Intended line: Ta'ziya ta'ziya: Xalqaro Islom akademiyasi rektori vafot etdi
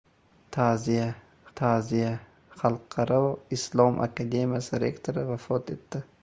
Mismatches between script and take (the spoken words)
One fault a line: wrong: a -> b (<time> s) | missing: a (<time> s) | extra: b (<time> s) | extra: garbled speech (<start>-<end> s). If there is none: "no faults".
no faults